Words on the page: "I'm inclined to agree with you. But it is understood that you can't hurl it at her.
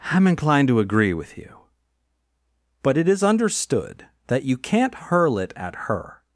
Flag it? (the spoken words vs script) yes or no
no